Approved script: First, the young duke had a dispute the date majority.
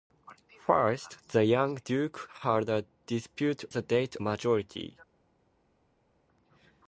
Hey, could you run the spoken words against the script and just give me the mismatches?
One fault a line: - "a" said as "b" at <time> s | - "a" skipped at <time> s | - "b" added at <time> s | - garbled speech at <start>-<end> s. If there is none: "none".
none